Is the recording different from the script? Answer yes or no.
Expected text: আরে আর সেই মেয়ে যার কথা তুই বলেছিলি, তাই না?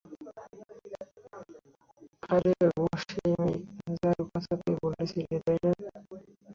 yes